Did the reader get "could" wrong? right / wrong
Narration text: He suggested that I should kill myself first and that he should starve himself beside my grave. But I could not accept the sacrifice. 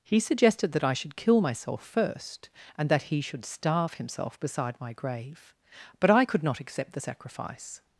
right